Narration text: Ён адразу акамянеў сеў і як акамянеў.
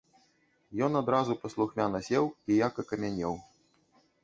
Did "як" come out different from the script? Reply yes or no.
no